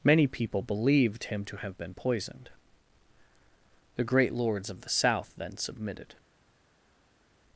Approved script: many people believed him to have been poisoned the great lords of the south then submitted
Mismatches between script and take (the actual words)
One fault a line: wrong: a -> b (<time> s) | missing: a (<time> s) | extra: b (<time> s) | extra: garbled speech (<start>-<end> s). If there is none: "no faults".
no faults